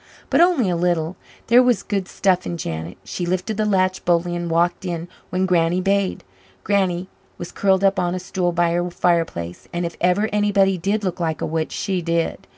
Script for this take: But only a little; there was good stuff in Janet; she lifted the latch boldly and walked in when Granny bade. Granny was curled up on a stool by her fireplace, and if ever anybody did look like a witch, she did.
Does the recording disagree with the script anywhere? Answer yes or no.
no